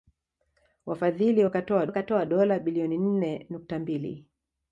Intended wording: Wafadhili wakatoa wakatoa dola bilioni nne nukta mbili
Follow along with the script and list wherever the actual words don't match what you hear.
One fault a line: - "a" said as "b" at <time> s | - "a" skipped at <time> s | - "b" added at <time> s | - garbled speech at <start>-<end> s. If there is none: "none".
none